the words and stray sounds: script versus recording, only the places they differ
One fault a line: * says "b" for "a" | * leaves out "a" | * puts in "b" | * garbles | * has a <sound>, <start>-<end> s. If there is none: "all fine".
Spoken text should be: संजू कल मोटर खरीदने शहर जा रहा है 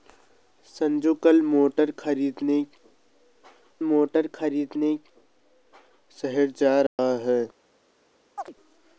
* puts in "मोटर खरीदने"
* has a dropout, 6.9-7.0 s
* has a chirp, 8.4-8.5 s